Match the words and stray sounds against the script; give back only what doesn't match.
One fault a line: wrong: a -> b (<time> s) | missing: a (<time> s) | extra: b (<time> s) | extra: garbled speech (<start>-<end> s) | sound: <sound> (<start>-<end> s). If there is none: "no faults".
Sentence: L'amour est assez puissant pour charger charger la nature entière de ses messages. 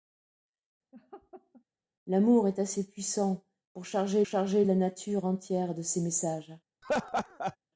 sound: laugh (0.9-1.6 s)
sound: laugh (6.8-7.6 s)